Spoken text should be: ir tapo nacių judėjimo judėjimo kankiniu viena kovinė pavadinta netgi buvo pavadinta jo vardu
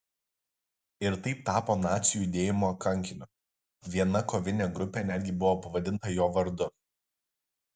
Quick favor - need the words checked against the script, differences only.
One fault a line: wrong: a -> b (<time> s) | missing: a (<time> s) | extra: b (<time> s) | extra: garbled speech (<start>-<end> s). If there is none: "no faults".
extra: taip (1.2 s)
missing: judėjimo (2.7 s)
wrong: pavadinta -> grupė (4.8 s)